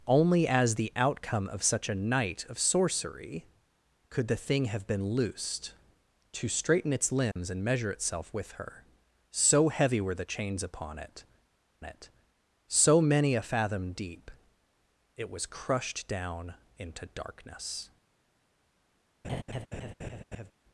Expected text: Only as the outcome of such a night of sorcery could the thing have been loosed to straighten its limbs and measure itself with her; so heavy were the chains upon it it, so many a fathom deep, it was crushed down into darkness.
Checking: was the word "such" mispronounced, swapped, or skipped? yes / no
no